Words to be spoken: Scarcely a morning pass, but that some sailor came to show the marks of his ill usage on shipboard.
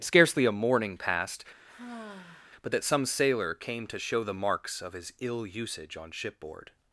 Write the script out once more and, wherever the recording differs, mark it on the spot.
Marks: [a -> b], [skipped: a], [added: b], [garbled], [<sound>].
Scarcely a morning [pass, -> passed] [sigh] but that some sailor came to show the marks of his ill usage on shipboard.